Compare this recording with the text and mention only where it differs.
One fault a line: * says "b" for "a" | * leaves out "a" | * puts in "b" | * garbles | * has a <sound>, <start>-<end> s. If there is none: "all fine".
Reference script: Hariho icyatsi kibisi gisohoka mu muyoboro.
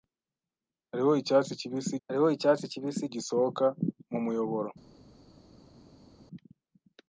* puts in "hariho icyatsi kibisi"